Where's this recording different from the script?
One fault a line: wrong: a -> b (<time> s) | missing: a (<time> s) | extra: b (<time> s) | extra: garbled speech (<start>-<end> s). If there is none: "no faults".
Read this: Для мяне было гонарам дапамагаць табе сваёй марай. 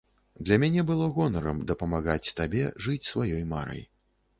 extra: жыць (2.9 s)